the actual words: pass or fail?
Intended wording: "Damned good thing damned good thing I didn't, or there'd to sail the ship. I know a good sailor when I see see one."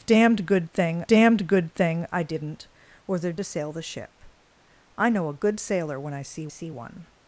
pass